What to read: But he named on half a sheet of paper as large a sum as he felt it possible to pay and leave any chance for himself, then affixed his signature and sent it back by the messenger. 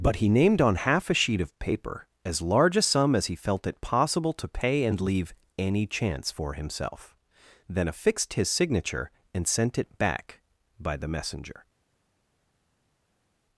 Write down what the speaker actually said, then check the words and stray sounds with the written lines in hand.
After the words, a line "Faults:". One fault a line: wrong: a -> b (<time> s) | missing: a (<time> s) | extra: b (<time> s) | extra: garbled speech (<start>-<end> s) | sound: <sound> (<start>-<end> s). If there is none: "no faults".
But he named on half a sheet of paper as large a sum as he felt it possible to pay and leave any chance for himself, then affixed his signature and sent it back by the messenger.
Faults:
no faults